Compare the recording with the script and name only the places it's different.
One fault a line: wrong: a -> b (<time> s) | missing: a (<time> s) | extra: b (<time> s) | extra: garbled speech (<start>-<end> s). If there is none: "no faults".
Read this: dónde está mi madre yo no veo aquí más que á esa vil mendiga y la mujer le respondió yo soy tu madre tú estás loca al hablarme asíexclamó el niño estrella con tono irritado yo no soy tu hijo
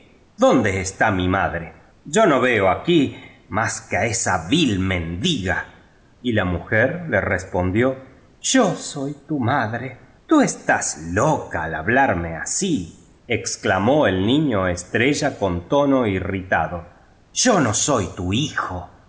no faults